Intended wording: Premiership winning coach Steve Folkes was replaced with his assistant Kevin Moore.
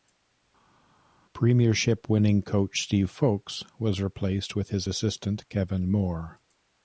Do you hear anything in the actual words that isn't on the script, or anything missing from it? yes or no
no